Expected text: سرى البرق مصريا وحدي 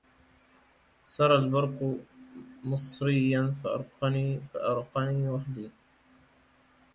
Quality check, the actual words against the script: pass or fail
fail